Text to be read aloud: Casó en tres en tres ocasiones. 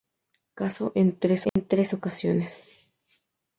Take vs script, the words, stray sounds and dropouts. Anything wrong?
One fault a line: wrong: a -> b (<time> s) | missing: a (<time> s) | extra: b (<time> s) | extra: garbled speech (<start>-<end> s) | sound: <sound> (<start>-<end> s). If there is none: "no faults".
sound: dropout (1.5-1.6 s)